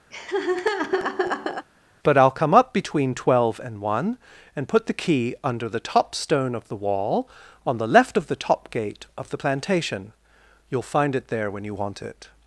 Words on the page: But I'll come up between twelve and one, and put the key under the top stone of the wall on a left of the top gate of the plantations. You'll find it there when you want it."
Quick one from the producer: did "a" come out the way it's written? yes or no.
no